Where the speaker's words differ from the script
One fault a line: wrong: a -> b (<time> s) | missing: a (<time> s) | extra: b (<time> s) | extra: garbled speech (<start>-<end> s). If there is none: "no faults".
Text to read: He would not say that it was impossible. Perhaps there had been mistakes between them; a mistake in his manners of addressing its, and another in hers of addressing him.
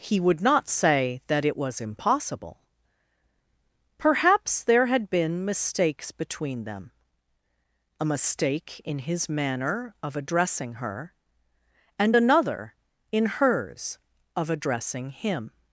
wrong: manners -> manner (9.3 s)
wrong: its -> her (10.8 s)